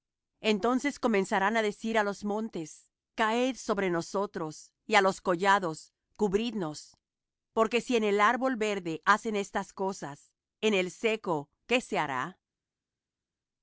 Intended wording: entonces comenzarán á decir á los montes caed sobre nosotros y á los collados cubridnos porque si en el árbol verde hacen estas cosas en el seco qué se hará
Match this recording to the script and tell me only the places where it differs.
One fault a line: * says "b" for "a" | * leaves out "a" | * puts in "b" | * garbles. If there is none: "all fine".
all fine